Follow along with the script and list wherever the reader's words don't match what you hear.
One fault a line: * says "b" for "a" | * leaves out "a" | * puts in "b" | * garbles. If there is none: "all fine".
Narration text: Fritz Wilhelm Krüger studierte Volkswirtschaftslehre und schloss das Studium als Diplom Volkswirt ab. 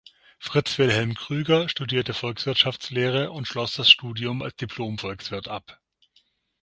all fine